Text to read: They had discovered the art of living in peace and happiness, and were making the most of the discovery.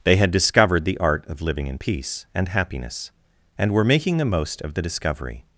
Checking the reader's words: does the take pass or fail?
pass